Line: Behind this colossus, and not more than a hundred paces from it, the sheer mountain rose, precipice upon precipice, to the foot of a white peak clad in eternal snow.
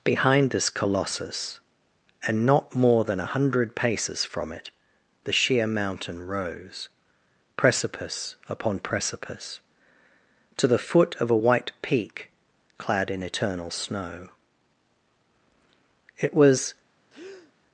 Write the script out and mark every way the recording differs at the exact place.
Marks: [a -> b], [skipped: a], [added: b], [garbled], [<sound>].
Behind this colossus, and not more than a hundred paces from it, the sheer mountain rose, precipice upon precipice, to the foot of a white peak clad in eternal snow. [added: It was] [breath]